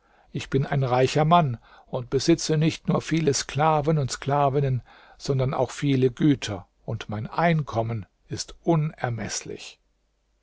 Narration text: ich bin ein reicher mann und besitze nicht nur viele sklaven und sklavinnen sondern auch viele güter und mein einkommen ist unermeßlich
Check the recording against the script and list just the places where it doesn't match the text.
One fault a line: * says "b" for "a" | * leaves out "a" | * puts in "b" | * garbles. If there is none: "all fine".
all fine